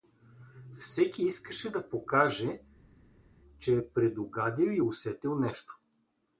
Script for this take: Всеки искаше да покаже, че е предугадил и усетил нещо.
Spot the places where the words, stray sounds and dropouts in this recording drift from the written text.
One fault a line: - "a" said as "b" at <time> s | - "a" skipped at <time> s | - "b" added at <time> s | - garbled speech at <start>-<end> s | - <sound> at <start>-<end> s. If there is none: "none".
none